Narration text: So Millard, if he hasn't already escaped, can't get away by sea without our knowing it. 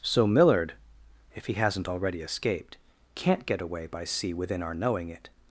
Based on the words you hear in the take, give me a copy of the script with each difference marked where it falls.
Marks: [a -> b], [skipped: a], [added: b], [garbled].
So Millard, if he hasn't already escaped, can't get away by sea [without -> within] our knowing it.